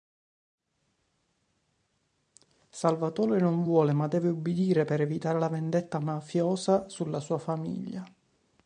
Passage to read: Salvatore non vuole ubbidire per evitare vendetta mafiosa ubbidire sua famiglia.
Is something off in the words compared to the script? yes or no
yes